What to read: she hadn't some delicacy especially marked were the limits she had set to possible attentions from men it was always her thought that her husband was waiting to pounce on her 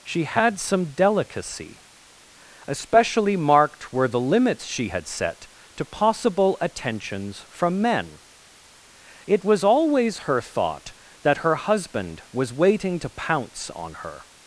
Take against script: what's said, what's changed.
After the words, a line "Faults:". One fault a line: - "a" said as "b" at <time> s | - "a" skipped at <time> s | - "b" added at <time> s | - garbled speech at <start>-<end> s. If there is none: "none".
she had some delicacy especially marked were the limits she had set to possible attentions from men it was always her thought that her husband was waiting to pounce on her
Faults:
- "hadn't" said as "had" at 0.2 s